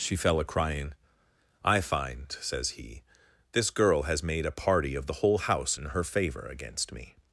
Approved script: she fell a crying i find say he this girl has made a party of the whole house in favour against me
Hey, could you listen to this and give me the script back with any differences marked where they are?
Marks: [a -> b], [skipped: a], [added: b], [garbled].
she fell a crying i find [say -> says] he this girl has made a party of the whole house in [added: her] favour against me